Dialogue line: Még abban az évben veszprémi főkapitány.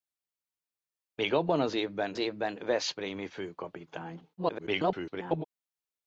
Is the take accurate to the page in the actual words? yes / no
no